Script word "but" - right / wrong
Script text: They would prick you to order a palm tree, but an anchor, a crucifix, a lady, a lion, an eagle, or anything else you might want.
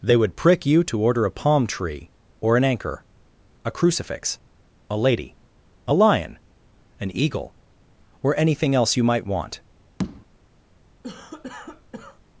wrong